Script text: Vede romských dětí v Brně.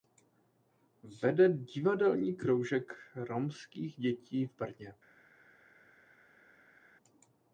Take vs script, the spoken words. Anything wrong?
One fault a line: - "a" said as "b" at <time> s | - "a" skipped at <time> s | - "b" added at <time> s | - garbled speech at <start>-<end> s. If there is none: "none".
- "divadelní kroužek" added at 1.5 s